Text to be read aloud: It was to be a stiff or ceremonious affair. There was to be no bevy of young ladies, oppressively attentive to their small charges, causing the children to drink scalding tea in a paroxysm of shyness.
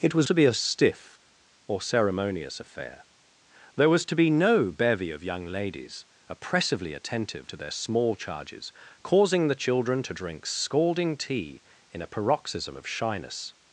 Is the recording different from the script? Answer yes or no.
no